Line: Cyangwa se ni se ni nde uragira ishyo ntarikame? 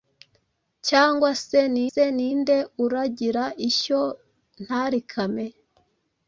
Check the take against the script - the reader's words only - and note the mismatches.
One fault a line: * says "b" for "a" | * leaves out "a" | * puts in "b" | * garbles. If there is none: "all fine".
all fine